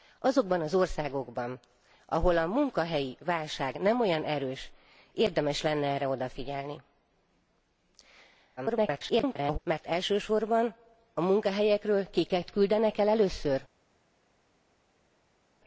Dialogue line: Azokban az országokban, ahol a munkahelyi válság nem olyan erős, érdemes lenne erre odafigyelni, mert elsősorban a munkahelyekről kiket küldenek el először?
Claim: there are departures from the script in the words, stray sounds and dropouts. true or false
true